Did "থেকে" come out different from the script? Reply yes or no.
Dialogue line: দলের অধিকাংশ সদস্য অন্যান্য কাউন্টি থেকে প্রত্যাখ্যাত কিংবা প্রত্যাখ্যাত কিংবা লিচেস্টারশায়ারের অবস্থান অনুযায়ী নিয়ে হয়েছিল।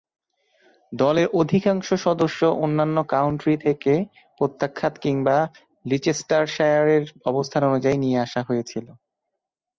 no